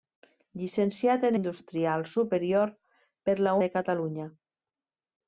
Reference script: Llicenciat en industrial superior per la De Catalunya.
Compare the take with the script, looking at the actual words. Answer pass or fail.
pass